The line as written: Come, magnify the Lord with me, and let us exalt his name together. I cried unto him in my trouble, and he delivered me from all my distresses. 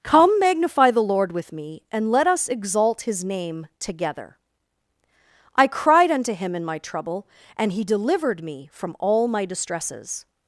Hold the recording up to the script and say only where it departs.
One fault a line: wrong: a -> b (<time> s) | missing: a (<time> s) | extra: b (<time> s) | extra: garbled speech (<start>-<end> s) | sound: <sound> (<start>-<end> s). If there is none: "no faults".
no faults